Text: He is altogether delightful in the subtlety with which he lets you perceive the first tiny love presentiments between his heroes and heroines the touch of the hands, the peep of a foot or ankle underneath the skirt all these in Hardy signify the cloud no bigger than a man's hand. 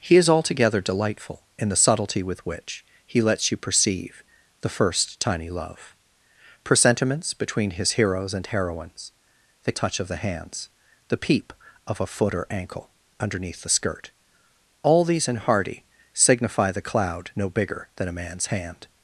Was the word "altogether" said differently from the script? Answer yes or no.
no